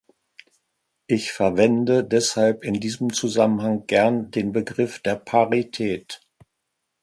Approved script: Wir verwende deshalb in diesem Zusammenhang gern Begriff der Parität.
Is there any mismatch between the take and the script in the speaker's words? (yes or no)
yes